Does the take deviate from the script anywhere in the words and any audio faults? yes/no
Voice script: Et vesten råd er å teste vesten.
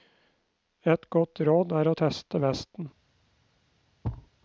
yes